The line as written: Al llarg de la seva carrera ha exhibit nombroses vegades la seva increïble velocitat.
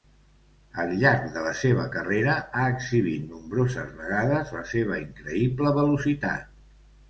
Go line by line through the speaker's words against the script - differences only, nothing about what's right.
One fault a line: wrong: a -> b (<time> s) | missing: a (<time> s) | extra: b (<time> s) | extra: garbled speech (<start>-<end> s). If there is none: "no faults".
no faults